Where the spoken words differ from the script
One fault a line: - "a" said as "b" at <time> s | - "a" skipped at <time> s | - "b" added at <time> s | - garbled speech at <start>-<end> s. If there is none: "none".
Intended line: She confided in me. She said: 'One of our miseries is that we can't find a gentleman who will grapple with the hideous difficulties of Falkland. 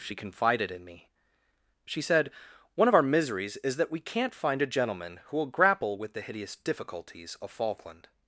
none